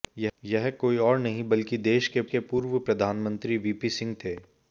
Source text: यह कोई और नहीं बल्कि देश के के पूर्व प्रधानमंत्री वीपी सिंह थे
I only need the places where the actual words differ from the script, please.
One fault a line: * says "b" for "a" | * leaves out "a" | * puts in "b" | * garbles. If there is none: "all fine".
all fine